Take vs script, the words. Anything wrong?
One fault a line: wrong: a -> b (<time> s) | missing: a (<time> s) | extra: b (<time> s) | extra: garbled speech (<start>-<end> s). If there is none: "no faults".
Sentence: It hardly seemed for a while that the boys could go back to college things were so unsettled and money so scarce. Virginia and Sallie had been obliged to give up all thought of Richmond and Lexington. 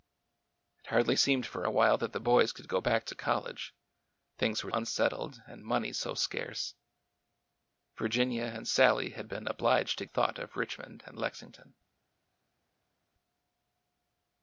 missing: so (4.7 s)
missing: give up all (10.0 s)